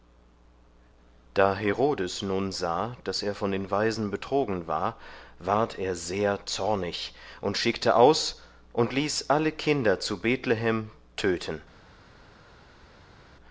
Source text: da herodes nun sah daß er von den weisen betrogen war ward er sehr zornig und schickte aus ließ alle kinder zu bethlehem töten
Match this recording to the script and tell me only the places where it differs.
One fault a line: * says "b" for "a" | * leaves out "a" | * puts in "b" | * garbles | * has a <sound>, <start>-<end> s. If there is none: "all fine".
* puts in "und"